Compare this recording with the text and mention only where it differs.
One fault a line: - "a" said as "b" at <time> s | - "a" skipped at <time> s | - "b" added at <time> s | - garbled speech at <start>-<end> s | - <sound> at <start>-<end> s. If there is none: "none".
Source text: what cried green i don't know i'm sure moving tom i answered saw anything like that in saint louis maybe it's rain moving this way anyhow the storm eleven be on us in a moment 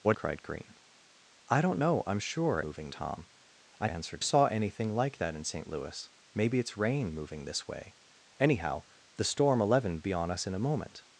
none